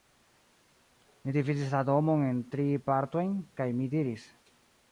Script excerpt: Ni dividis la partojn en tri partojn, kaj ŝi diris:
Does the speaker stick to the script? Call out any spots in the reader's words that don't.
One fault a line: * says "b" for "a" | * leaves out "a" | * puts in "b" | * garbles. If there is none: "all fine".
* says "domon" for "partojn"
* says "mi" for "ŝi"